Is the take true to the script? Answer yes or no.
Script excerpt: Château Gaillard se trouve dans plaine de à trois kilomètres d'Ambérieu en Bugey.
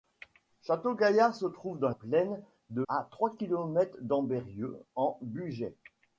yes